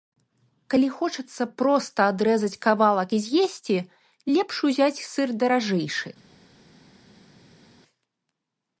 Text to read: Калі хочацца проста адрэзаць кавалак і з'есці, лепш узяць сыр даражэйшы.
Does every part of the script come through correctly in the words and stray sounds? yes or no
yes